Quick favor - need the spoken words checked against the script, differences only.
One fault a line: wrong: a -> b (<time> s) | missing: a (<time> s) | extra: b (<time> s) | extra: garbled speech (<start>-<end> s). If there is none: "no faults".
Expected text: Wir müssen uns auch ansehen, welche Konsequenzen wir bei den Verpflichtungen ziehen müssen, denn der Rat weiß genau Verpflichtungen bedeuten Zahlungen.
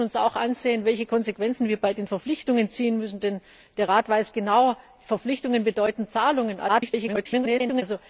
extra: garbled speech (6.7-7.8 s)